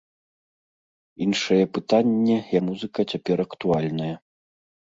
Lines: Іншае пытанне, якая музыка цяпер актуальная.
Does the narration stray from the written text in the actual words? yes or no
yes